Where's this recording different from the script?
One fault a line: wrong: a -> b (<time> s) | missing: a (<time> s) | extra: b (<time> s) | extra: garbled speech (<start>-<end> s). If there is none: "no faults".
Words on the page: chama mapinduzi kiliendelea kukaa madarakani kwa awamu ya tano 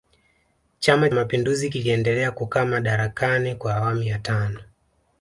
no faults